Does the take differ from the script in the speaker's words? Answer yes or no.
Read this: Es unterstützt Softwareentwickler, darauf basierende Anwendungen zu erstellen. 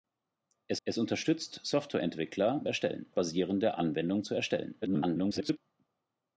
yes